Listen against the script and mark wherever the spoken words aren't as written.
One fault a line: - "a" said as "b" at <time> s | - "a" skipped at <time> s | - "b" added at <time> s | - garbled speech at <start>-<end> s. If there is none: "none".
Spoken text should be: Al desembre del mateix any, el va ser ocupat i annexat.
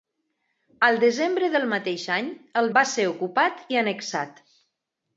none